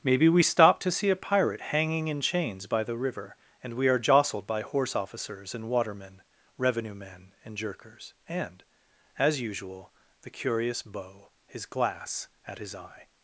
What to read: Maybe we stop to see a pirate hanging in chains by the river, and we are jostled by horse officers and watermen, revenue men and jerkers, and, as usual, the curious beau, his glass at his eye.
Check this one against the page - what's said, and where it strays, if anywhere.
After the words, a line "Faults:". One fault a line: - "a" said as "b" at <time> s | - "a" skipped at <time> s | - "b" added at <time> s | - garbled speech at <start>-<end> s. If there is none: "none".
Maybe we stop to see a pirate hanging in chains by the river, and we are jostled by horse officers and watermen, revenue men and jerkers, and, as usual, the curious beau, his glass at his eye.
Faults:
none